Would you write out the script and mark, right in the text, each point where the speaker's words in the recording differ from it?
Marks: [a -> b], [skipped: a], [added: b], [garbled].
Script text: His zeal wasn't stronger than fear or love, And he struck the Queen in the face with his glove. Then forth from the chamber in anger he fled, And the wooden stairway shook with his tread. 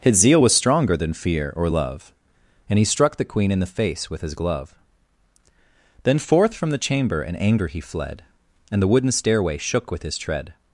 His zeal [wasn't -> was] stronger than fear or love, And he struck the Queen in the face with his glove. Then forth from the chamber in anger he fled, And the wooden stairway shook with his tread.